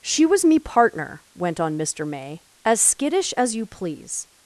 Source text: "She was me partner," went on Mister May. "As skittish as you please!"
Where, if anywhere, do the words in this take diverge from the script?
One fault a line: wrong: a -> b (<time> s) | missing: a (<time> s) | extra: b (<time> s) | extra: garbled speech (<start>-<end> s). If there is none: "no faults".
no faults